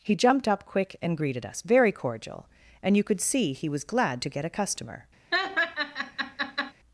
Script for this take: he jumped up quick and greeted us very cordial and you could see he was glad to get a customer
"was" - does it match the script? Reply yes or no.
yes